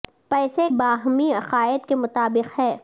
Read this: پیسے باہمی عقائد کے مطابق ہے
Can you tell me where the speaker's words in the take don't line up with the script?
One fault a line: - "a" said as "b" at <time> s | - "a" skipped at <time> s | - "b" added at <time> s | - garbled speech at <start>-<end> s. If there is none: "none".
none